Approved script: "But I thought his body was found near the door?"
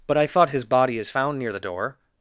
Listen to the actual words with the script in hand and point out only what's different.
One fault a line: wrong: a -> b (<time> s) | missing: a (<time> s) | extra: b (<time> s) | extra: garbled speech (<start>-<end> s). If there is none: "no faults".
wrong: was -> is (1.0 s)